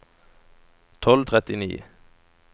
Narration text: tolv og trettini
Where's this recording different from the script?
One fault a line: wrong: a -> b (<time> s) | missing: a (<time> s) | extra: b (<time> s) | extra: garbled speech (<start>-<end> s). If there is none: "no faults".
no faults